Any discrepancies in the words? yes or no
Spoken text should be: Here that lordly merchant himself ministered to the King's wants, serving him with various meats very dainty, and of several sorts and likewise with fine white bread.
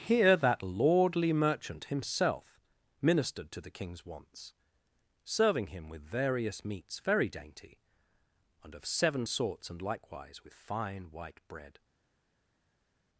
yes